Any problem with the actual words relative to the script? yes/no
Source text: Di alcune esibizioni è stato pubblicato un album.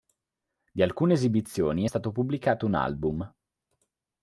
no